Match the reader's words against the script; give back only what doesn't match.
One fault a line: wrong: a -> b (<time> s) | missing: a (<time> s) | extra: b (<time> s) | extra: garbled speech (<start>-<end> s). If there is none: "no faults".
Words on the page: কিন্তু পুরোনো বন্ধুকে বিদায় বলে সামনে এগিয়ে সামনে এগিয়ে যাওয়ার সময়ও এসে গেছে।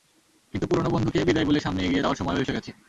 missing: সামনে এগিয়ে (2.0 s)